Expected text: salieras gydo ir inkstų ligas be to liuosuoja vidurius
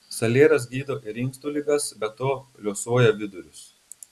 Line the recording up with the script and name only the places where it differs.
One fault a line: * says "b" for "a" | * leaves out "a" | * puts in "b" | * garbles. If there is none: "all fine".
all fine